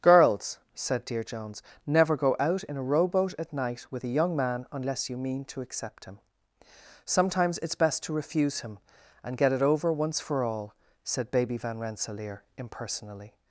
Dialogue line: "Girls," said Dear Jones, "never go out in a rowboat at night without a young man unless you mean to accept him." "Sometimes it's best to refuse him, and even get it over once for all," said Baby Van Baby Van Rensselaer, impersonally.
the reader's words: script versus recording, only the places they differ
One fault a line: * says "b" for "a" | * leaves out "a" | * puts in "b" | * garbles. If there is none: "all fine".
* says "with" for "without"
* leaves out "even"
* leaves out "Baby Van"